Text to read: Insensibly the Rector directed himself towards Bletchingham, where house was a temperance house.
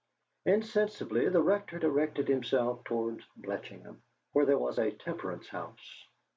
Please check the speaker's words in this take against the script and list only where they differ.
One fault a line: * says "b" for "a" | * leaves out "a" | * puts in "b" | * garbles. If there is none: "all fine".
* says "there" for "house"